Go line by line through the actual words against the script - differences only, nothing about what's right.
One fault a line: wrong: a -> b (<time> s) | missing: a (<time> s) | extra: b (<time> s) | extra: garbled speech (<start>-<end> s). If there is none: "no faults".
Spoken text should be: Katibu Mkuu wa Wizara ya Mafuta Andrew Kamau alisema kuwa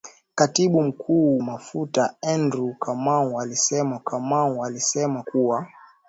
wrong: wa Wizara ya Mafuta Andrew -> Mafuta Andrew Kamau alisema (1.4 s)